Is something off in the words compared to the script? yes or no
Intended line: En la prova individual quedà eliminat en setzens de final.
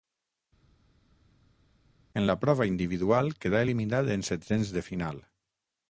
no